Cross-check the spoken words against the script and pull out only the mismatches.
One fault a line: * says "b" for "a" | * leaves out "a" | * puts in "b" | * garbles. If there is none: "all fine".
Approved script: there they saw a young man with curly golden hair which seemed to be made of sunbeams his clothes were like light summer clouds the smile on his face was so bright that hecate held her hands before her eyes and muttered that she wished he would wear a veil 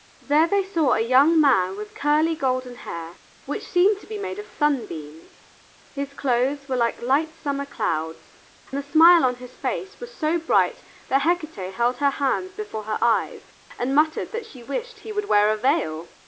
all fine